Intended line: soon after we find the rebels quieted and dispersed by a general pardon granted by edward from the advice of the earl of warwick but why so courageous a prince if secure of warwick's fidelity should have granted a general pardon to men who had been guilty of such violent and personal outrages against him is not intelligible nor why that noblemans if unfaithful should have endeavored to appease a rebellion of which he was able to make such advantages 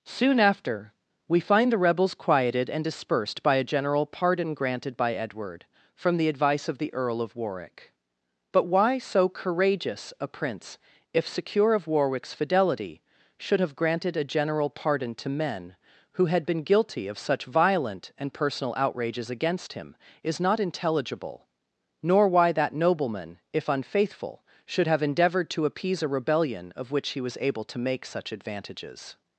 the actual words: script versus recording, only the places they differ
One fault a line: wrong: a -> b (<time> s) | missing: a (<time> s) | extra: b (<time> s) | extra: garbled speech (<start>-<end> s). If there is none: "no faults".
wrong: noblemans -> nobleman (22.7 s)